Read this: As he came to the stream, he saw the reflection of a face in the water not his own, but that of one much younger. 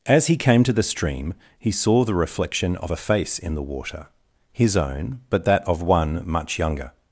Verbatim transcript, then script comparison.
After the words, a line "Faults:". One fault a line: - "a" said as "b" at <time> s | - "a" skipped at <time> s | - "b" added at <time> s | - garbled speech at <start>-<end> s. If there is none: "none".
As he came to the stream, he saw the reflection of a face in the water his own, but that of one much younger.
Faults:
- "not" skipped at 4.1 s